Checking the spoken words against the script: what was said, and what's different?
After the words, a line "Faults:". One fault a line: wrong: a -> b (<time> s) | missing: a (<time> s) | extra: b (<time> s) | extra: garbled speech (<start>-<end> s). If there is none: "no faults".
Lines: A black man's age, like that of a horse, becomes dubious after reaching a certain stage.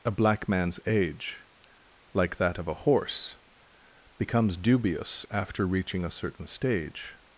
A black man's age, like that of a horse, becomes dubious after reaching a certain stage.
Faults:
no faults